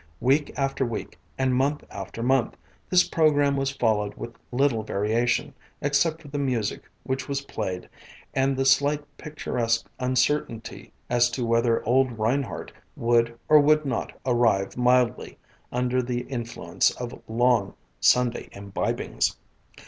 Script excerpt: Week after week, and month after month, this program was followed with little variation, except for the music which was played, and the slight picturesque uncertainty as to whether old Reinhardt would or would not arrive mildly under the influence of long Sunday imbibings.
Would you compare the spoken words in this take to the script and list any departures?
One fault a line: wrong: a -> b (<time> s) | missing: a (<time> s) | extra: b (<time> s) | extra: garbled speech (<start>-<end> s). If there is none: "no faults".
no faults